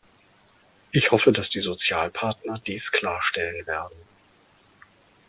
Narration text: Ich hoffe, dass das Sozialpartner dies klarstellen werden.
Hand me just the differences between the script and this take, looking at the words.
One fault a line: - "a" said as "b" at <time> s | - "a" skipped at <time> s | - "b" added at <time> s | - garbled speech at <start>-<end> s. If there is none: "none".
- "das" said as "die" at 1.5 s